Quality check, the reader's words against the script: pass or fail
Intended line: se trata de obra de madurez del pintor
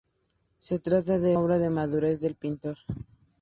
pass